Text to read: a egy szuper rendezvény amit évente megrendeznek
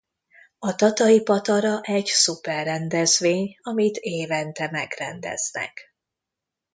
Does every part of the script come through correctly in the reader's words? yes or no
no